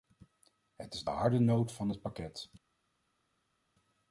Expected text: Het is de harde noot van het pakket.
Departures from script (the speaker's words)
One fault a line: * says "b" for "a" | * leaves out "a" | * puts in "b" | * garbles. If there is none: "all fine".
all fine